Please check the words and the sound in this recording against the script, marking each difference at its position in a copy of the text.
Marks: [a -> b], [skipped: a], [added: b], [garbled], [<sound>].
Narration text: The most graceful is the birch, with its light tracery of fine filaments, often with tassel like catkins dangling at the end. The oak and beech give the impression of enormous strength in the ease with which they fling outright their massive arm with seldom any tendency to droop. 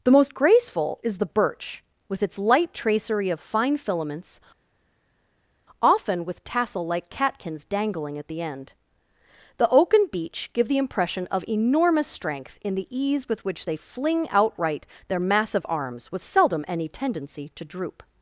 The most graceful is the birch, with its light tracery of fine filaments, often with tassel like catkins dangling at the end. The oak and beech give the impression of enormous strength in the ease with which they fling outright their massive [arm -> arms] with seldom any tendency to droop.